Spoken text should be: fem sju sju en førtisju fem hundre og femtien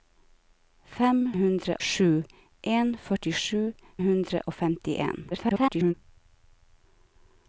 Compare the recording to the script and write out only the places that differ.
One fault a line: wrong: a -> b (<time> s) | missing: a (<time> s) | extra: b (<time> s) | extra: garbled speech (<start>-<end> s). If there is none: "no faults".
wrong: sju -> hundre (1.4 s)
missing: fem (3.6 s)
extra: garbled speech (5.3-5.9 s)